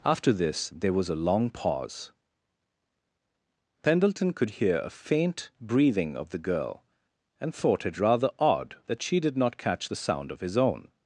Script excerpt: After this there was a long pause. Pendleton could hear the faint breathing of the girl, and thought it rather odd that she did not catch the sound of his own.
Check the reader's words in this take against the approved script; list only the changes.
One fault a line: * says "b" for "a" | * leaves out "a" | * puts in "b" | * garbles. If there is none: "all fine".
* says "a" for "the"